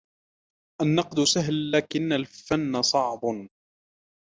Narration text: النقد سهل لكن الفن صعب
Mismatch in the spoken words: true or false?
false